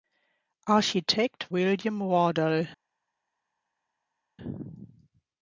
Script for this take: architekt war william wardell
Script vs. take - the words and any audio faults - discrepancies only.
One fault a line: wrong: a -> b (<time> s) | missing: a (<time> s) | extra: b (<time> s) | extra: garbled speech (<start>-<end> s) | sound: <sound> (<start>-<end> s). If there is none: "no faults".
missing: war (1.5 s)